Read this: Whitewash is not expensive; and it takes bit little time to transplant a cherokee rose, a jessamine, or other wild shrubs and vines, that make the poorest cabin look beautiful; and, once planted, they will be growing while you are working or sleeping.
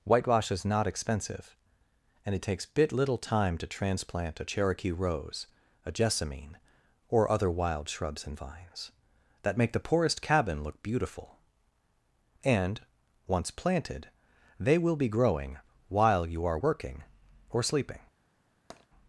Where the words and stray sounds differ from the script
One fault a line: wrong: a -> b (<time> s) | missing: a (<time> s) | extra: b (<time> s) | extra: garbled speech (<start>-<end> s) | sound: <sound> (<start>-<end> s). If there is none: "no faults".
sound: tap (18.7-18.9 s)